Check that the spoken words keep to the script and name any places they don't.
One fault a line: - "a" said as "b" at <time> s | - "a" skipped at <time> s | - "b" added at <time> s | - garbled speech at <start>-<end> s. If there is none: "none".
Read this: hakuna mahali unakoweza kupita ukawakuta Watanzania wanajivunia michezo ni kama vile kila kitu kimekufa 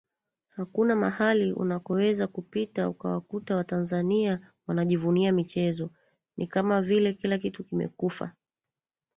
none